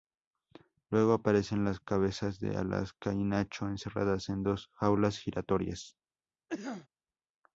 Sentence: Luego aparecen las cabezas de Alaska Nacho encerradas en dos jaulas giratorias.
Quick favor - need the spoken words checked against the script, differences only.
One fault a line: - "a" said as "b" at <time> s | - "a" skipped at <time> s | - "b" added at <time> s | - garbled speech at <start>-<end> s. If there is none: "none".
- "y" added at 3.1 s